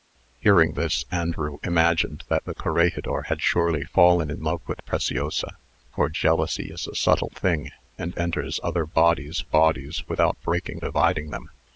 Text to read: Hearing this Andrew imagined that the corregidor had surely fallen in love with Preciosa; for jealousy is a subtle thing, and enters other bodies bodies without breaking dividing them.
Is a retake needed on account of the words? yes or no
no